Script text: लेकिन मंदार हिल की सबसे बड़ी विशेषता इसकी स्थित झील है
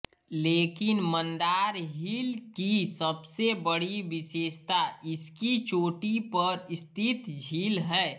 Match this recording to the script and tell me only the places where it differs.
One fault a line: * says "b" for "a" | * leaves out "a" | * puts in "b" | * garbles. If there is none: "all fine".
* puts in "चोटी पर"